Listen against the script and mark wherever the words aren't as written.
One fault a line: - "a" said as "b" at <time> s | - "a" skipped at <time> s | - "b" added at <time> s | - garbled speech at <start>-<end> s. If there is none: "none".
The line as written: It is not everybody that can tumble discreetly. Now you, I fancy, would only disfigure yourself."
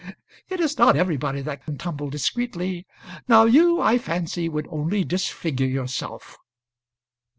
none